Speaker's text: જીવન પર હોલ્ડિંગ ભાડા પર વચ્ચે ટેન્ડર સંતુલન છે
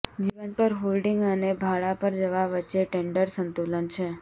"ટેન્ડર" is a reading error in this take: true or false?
false